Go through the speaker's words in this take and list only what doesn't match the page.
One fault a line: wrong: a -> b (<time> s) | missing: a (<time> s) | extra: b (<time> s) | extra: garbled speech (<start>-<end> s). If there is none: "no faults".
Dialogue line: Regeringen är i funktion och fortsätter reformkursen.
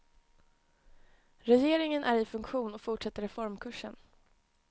no faults